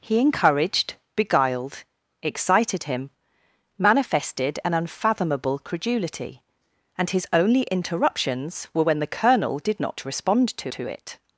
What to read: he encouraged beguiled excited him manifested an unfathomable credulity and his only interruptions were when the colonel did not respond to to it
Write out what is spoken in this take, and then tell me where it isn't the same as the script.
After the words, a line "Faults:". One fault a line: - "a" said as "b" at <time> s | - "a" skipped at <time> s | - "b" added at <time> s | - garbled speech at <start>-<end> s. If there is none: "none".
he encouraged beguiled excited him manifested an unfathomable credulity and his only interruptions were when the colonel did not respond to to it
Faults:
none